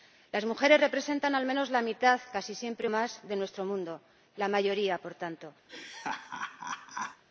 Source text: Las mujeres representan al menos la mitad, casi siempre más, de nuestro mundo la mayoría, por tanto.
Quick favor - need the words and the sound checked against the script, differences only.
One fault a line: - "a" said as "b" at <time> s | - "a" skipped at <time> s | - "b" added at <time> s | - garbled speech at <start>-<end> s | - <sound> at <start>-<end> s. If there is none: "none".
- laugh at 5.7-7.2 s